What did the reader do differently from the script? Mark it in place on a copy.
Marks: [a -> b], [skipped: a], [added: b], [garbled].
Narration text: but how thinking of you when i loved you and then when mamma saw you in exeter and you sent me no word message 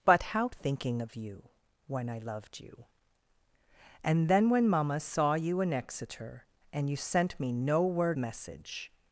but how thinking of you when i loved you and then when mamma saw you in exeter and you sent me no word message